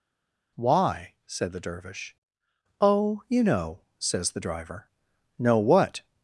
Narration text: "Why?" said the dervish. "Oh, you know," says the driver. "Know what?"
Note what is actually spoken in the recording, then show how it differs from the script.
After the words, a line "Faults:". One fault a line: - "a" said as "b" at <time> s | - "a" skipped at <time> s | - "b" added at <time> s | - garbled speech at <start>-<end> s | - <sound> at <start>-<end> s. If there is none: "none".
"Why?" said the dervish. "Oh, you know," says the driver. "Know what?"
Faults:
none